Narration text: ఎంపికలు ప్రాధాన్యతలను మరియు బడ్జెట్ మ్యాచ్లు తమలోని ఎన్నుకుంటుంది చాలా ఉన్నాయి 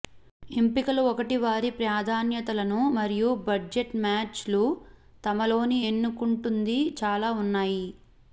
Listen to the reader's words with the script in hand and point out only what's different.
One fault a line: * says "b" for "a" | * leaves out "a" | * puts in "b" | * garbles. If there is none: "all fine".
* puts in "ఒకటి వారి"